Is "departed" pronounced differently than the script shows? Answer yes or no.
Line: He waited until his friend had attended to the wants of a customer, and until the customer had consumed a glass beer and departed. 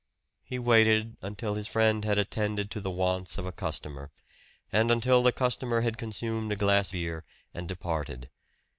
no